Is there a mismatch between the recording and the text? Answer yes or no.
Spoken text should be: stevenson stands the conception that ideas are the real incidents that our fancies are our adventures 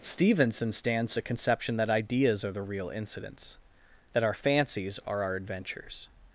no